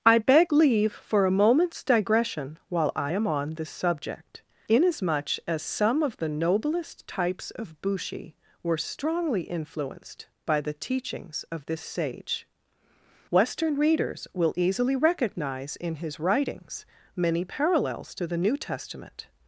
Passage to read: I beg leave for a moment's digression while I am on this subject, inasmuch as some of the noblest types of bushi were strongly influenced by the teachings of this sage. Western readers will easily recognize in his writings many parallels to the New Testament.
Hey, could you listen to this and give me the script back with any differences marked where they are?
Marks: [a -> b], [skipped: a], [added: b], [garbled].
I beg leave for a moment's digression while I am on this subject, inasmuch as some of the noblest types of bushi were strongly influenced by the teachings of this sage. Western readers will easily recognize in his writings many parallels to the New Testament.